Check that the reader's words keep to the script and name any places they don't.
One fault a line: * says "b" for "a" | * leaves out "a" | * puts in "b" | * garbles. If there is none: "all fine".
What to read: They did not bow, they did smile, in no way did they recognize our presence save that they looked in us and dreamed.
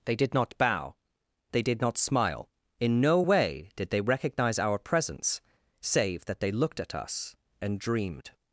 * puts in "not"
* says "at" for "in"